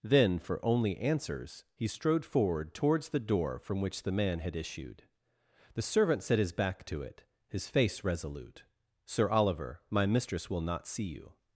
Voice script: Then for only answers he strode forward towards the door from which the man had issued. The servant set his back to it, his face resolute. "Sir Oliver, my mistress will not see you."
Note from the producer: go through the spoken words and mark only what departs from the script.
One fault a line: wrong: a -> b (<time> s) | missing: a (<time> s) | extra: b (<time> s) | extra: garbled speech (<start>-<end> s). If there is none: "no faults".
no faults